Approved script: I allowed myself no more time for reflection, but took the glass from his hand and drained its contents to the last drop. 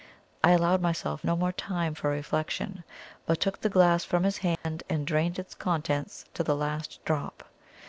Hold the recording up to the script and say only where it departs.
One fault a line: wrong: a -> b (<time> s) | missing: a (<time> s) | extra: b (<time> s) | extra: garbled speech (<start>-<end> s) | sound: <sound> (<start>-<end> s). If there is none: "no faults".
sound: dropout (4.6-4.6 s)